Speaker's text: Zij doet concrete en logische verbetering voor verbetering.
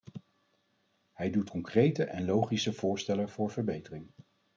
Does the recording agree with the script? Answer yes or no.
no